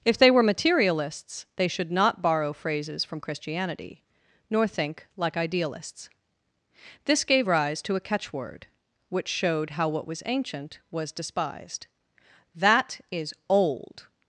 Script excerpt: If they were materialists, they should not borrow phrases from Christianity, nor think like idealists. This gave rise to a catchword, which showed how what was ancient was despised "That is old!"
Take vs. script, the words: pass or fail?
pass